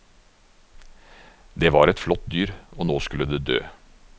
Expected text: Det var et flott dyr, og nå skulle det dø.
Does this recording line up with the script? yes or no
yes